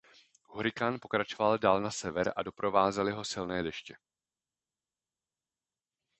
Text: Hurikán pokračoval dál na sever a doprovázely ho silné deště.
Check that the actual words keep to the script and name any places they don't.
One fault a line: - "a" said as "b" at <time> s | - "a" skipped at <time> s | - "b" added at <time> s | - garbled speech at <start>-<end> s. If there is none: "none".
none